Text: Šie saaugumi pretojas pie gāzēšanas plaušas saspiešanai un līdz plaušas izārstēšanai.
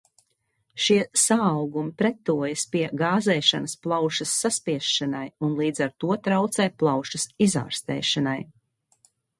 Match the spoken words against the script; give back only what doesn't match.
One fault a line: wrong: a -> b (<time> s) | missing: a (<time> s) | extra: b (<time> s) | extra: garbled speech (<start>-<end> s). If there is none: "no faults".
extra: ar to traucē (5.9 s)